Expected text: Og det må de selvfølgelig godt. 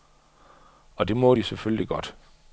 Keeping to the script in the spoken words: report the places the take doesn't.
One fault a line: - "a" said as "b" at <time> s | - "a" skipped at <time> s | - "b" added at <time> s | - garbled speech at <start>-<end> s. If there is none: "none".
none